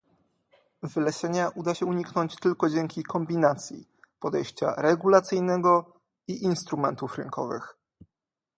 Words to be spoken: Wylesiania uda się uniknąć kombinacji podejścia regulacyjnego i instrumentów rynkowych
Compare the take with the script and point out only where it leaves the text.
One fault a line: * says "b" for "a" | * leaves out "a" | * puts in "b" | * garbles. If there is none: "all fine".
* puts in "tylko dzięki"